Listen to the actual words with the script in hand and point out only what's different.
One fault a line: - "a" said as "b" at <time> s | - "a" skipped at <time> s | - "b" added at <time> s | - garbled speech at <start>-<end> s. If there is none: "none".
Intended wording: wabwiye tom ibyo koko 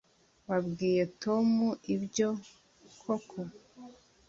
none